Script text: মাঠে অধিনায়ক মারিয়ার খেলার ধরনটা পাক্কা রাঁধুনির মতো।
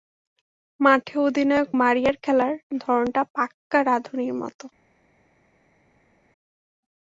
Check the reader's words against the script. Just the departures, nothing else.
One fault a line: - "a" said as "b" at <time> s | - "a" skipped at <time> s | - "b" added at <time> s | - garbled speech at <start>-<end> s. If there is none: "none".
none